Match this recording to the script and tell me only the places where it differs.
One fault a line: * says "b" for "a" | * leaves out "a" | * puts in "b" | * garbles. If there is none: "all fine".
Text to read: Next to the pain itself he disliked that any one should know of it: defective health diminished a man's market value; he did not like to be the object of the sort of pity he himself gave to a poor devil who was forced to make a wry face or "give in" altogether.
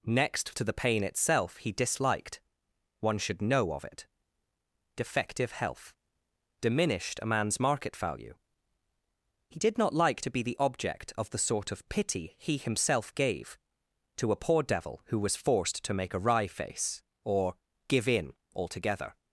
* leaves out "that any"